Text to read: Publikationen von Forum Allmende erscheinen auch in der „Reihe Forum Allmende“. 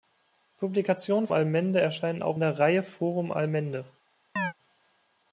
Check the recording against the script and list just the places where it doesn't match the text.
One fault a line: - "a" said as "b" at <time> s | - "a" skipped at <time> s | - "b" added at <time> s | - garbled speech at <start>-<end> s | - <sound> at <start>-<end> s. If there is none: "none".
- "von Forum" skipped at 1.3 s
- "in" skipped at 2.4 s
- chirp at 4.4-4.5 s